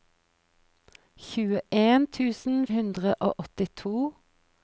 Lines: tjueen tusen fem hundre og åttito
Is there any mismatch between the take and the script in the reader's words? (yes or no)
yes